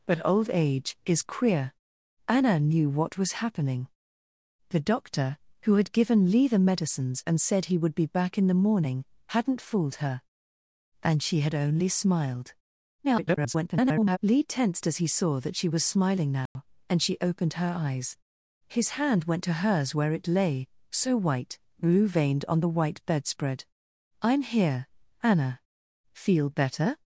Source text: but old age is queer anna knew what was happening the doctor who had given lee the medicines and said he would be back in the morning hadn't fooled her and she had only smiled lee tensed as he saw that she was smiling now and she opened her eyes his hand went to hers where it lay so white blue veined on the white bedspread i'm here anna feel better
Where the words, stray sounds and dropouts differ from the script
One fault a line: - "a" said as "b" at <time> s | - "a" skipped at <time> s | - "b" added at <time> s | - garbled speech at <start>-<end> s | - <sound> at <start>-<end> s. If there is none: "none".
- garbled speech at 13.0-14.2 s
- dropout at 16.5-16.6 s